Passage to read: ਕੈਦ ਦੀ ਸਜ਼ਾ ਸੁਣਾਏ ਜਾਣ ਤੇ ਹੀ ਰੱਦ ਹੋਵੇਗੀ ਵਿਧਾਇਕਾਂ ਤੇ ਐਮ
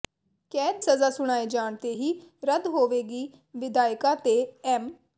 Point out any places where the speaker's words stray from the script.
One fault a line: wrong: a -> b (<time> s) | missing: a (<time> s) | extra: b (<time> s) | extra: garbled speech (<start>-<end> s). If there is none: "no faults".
missing: ਦੀ (0.8 s)